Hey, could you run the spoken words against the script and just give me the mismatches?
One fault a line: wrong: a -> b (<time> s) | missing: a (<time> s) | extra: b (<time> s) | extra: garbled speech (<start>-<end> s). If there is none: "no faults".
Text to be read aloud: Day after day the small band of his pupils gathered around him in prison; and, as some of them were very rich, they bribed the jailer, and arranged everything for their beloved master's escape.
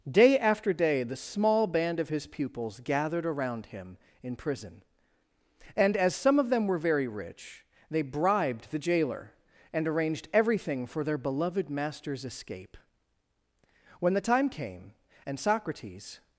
extra: When the time came and Socrates (14.0 s)